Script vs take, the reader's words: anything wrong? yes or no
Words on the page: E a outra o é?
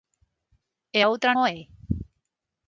no